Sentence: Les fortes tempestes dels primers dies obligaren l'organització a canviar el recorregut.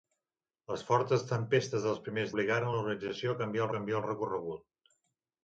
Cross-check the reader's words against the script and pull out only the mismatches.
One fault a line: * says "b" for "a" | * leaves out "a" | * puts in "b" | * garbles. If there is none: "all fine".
* leaves out "dies"
* puts in "canviar"